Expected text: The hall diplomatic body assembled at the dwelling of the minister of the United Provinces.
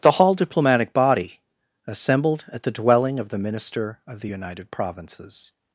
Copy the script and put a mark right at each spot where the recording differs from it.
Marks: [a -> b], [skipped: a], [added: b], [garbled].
The hall diplomatic body assembled at the dwelling of the minister of the United Provinces.